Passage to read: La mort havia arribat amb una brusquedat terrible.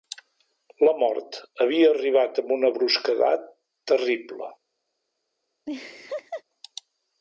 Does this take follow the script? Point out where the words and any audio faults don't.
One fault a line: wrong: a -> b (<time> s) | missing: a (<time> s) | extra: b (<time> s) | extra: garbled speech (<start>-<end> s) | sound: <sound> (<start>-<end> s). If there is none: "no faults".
sound: laugh (5.7-6.4 s)